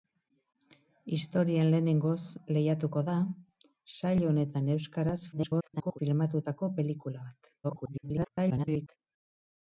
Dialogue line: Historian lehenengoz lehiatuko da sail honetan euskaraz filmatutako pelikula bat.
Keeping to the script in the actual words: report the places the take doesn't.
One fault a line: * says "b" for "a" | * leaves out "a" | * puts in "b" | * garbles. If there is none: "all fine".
* garbles
* garbles